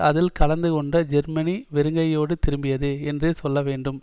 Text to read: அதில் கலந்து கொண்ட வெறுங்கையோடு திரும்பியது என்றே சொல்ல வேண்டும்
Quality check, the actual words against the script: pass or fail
fail